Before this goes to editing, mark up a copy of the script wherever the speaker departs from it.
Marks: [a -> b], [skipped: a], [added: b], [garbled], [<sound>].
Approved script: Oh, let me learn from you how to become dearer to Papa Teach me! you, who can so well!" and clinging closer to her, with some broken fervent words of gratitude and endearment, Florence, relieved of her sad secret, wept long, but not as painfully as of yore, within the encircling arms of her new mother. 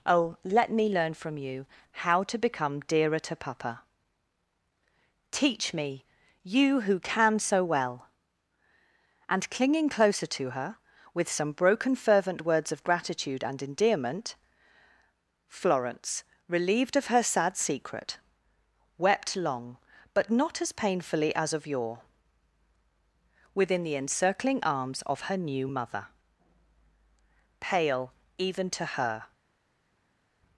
Oh, let me learn from you how to become dearer to Papa Teach me! you, who can so well!" and clinging closer to her, with some broken fervent words of gratitude and endearment, Florence, relieved of her sad secret, wept long, but not as painfully as of yore, within the encircling arms of her new mother. [added: Pale even to her]